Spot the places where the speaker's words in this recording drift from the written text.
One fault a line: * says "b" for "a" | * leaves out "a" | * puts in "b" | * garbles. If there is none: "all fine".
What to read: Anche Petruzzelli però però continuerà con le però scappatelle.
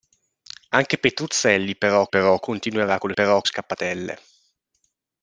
all fine